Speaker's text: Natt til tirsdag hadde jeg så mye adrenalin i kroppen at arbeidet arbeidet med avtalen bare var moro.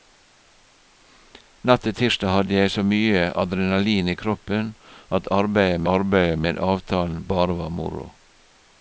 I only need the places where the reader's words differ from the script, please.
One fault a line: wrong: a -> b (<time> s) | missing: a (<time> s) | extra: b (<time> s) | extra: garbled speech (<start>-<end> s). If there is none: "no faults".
no faults